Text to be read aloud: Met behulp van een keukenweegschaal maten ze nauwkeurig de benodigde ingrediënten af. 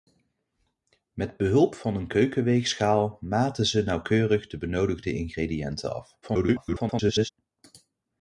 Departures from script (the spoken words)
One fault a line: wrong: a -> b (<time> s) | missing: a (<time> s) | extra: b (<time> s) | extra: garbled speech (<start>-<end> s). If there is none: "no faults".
extra: garbled speech (6.2-7.3 s)